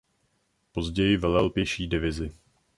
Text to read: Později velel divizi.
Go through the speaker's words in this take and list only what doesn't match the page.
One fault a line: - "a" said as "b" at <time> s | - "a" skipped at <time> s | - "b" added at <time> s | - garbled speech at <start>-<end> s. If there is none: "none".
- "pěší" added at 1.5 s